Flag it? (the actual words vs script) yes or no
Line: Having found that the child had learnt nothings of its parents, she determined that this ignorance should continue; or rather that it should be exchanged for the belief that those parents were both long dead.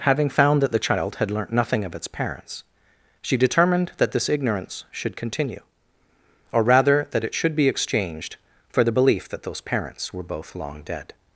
yes